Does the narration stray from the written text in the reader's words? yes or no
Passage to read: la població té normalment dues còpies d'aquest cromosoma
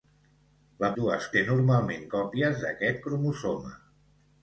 yes